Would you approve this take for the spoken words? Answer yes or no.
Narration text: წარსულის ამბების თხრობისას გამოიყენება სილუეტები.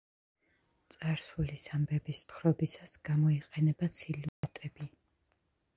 yes